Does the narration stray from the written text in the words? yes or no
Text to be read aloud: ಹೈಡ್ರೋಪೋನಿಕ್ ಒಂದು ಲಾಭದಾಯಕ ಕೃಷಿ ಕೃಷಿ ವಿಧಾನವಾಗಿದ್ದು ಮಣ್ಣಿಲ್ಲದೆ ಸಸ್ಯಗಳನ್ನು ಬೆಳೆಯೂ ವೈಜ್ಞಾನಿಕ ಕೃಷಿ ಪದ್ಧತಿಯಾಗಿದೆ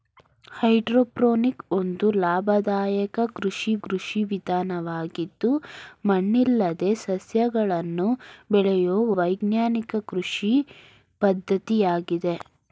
no